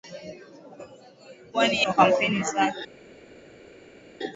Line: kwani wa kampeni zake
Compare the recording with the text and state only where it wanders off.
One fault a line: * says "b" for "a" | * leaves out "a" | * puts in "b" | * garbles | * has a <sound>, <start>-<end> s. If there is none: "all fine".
all fine